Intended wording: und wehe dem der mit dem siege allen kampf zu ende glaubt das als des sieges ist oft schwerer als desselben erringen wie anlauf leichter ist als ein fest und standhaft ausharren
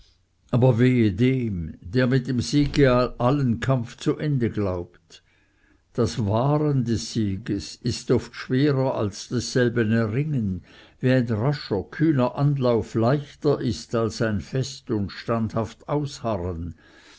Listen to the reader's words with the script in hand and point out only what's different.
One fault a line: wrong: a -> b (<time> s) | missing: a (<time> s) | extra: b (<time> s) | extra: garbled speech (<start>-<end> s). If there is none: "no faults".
wrong: und -> aber (0.5 s)
wrong: als -> wahren (6.2 s)
extra: ein rascher kühner (11.1 s)